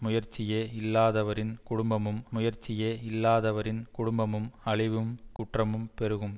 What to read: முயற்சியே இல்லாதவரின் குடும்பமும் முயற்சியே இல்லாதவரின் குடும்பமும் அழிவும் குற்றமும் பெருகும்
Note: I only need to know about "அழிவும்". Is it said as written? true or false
true